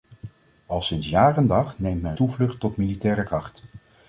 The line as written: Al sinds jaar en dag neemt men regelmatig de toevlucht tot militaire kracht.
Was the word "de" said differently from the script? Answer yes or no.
yes